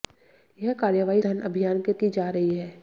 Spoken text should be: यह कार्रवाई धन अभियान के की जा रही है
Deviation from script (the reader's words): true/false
false